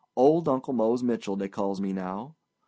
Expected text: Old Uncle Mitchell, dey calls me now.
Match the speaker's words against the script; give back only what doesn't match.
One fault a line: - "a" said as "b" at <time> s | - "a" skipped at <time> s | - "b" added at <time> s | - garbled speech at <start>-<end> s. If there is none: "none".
- "Mose" added at 0.7 s